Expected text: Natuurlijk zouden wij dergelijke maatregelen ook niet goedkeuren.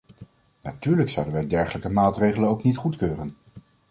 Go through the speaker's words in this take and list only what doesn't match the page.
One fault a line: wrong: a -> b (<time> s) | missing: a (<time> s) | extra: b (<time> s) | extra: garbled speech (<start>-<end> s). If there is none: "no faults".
no faults